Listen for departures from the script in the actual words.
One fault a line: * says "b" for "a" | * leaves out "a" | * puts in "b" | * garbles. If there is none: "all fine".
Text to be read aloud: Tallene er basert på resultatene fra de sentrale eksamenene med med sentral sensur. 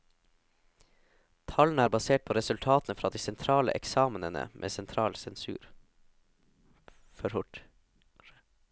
* leaves out "med"